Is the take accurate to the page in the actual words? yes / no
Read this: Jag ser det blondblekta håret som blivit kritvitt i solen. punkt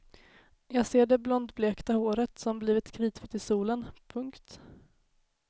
yes